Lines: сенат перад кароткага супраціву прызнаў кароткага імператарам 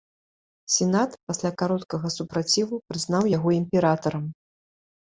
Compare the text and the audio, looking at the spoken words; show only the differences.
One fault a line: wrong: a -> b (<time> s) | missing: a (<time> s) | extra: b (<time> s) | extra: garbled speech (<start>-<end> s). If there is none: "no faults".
wrong: перад -> пасля (1.3 s)
wrong: кароткага -> яго (3.4 s)